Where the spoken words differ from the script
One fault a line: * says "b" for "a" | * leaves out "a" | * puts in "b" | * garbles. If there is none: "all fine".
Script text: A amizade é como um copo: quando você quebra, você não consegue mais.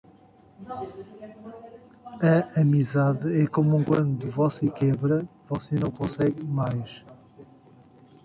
* leaves out "copo"